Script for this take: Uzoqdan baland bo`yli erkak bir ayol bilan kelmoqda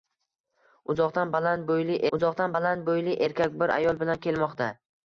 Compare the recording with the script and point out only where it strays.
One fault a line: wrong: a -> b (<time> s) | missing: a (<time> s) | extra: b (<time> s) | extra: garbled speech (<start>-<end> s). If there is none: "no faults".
extra: uzoqdan baland bo`yli (2.2 s)